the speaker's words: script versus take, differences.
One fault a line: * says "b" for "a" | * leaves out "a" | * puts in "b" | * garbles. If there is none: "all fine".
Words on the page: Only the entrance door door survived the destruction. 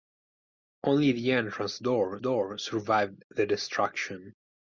all fine